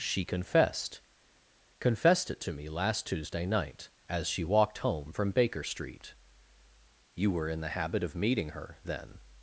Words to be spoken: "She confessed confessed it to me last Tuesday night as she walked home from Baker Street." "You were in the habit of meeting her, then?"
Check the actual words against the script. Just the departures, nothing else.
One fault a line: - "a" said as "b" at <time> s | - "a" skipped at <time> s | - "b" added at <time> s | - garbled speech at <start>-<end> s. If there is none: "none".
none